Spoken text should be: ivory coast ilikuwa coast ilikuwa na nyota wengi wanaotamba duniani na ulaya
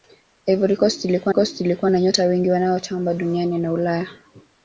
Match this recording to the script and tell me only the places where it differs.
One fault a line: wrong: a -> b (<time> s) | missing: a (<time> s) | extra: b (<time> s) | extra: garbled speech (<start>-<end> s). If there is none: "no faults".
no faults